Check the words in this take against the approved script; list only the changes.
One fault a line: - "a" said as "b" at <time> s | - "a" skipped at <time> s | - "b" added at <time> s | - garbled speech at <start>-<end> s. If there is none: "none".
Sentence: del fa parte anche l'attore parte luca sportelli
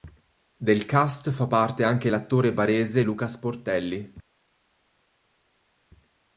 - "cast" added at 0.9 s
- "parte" said as "barese" at 2.5 s